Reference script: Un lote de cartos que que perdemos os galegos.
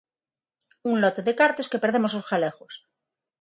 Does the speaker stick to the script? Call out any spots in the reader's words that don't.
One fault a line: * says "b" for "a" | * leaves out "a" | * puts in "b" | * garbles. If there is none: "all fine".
* leaves out "que"